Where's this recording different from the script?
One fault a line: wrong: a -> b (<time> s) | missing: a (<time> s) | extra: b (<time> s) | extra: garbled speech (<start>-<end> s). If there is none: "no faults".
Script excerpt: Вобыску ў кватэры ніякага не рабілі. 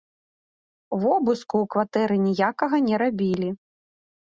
no faults